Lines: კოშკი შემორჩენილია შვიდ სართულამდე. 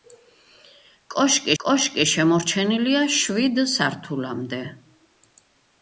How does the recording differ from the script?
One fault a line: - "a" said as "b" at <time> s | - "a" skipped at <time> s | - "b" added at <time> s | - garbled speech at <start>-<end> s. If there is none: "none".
- "კოშკი" added at 1.6 s